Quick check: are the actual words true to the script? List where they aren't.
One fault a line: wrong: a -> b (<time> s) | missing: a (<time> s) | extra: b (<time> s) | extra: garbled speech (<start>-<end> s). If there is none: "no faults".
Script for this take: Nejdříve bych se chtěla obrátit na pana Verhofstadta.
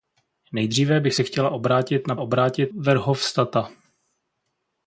wrong: pana -> obrátit (2.2 s)